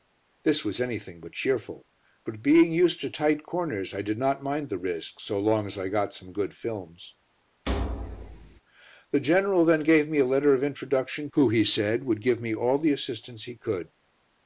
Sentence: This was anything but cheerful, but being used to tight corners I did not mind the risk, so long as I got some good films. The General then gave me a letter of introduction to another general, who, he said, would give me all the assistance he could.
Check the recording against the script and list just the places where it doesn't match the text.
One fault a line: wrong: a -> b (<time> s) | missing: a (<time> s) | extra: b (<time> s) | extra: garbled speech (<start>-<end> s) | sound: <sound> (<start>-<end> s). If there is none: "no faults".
sound: thud (7.7-8.6 s)
missing: to another general (11.3 s)